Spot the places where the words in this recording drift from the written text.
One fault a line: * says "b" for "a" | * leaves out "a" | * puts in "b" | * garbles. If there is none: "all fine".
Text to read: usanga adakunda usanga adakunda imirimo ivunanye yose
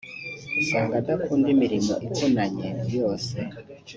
* leaves out "usanga adakunda"